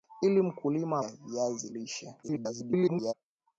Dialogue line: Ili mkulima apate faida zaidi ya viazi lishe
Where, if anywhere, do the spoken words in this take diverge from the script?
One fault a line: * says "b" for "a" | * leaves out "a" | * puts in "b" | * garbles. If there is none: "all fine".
* leaves out "apate faida zaidi"
* garbles